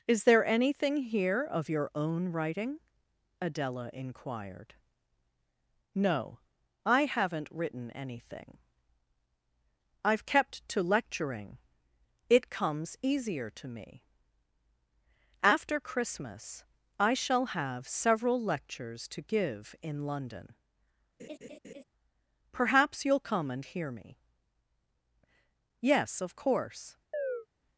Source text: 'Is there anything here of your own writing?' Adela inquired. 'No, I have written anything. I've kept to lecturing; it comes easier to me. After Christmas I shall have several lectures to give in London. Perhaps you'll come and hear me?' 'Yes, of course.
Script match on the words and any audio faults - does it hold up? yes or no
no